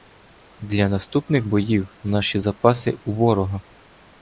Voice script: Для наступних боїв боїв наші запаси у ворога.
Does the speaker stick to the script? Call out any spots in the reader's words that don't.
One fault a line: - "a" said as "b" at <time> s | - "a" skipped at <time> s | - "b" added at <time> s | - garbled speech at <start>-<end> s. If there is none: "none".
- "боїв" skipped at 1.9 s